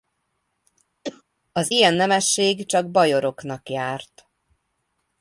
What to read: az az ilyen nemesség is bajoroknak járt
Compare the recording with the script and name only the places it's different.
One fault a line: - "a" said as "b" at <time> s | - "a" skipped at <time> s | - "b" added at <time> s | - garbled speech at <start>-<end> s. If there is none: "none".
- "az" skipped at 1.7 s
- "is" said as "csak" at 2.7 s